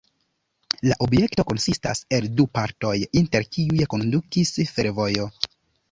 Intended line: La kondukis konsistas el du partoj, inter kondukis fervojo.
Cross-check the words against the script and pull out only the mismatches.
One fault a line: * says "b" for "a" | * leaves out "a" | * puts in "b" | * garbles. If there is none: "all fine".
* says "objekto" for "kondukis"
* puts in "kiuj"